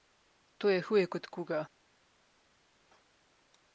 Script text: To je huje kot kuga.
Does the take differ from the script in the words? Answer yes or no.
no